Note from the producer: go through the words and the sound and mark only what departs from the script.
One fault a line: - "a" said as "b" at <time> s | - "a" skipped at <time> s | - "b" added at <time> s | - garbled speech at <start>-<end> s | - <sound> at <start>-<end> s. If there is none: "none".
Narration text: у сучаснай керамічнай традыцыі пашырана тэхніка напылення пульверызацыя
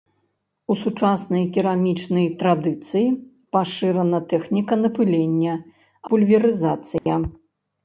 - dropout at 7.0-7.1 s